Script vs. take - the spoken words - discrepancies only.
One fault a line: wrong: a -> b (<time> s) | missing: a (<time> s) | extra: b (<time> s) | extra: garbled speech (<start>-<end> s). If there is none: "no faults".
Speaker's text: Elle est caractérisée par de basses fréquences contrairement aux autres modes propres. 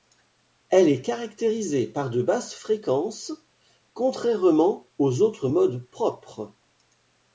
no faults